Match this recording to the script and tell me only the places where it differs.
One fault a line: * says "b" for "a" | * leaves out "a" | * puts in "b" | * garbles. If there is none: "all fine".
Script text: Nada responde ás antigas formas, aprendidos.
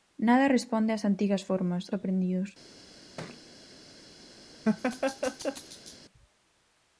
all fine